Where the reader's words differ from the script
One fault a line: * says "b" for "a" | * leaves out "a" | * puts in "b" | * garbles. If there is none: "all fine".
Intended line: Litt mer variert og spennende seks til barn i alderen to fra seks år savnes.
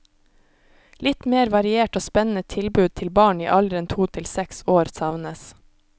* says "tilbud" for "seks"
* says "til" for "fra"